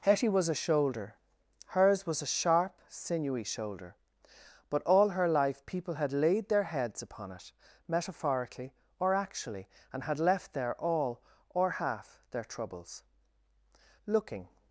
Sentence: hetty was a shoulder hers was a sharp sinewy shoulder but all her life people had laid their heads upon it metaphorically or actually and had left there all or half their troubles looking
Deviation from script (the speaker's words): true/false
false